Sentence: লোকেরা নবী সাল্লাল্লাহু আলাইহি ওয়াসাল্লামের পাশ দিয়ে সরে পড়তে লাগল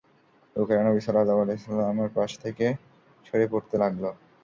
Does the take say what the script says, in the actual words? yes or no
no